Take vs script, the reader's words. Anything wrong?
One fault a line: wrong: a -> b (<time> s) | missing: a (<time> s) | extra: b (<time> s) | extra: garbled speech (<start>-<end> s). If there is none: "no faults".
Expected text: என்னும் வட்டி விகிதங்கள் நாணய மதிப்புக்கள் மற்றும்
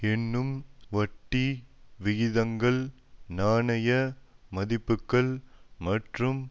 no faults